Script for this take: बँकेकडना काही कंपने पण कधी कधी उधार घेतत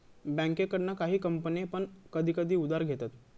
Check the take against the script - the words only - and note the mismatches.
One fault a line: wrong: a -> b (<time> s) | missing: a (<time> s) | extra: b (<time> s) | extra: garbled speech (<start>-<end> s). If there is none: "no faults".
no faults